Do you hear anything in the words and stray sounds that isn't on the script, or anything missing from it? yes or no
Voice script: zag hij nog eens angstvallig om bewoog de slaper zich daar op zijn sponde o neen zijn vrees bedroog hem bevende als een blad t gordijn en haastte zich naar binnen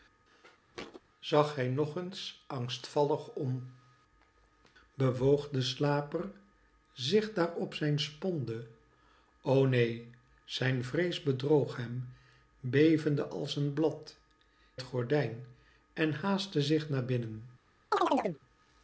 yes